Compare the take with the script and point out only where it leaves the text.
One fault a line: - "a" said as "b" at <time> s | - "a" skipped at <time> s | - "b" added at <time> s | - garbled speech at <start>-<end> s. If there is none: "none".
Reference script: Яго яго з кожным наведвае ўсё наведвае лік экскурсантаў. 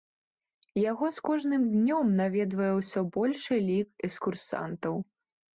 - "яго" skipped at 1.1 s
- "днём" added at 1.7 s
- "наведвае" said as "большы" at 3.2 s